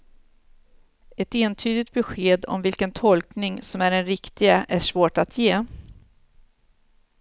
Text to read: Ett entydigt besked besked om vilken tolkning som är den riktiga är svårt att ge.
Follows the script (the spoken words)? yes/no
no